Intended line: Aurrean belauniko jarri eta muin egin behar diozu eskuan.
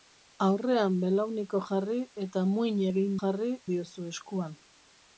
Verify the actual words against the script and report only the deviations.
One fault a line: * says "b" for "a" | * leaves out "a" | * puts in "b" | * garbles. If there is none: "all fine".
* says "jarri" for "behar"